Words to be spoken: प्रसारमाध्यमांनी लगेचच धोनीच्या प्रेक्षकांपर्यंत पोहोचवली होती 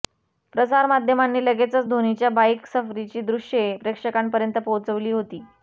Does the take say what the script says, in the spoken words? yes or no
no